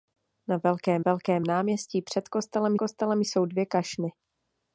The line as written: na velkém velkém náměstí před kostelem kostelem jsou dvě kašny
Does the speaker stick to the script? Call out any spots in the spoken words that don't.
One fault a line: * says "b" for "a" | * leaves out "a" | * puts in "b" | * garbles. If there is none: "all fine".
all fine